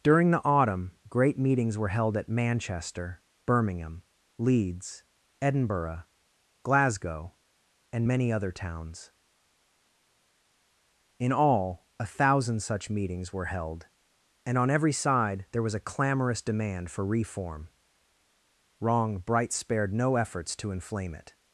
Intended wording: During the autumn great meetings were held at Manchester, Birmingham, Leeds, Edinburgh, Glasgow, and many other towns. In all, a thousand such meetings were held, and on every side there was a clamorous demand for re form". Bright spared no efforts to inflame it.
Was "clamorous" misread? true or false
false